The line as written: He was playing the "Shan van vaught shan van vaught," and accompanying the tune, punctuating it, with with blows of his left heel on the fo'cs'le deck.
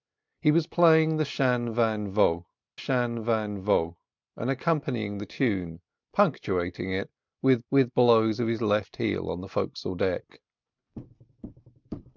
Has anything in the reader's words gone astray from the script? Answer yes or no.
no